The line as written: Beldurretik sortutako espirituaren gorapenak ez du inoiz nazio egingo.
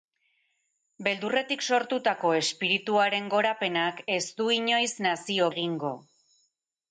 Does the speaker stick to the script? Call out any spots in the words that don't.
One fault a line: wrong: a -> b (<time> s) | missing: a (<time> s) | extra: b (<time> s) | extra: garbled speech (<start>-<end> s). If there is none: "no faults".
no faults